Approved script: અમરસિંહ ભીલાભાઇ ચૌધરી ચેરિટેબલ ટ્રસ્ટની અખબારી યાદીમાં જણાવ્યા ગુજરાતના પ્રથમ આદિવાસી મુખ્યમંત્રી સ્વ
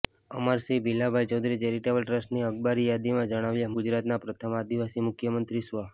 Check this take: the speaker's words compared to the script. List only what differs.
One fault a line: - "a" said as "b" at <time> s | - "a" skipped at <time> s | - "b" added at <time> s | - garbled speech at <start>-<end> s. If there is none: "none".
none